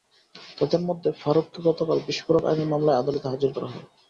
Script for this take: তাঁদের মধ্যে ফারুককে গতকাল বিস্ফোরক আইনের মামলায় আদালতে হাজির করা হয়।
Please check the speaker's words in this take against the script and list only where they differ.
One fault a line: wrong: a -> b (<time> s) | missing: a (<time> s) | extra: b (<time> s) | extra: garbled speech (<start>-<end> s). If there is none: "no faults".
no faults